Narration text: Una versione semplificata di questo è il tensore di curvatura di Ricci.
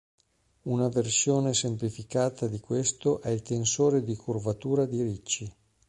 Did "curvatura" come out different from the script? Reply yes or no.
no